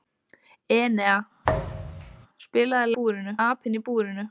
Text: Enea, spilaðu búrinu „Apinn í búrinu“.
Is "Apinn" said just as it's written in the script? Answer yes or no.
yes